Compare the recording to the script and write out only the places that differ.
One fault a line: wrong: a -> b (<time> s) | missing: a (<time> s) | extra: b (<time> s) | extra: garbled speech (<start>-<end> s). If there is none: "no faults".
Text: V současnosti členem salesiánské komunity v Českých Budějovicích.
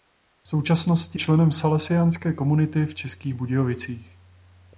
no faults